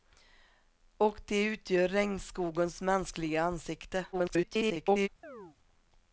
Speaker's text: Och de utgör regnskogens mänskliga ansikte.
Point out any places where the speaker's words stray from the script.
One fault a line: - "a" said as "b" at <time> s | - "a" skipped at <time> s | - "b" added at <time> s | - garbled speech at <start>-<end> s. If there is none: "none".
- garbled speech at 4.1-5.1 s